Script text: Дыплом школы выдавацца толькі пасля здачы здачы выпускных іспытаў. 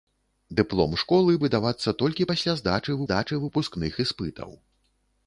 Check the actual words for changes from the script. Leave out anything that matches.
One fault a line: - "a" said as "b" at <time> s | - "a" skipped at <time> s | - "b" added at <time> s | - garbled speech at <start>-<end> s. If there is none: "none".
none